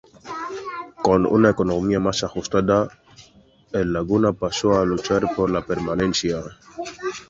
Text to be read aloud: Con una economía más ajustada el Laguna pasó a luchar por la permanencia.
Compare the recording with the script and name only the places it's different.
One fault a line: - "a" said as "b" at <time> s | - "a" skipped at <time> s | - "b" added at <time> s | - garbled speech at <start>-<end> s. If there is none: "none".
none